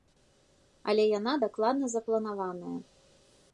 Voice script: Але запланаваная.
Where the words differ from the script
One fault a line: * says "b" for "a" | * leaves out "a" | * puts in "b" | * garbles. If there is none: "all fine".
* puts in "яна дакладна"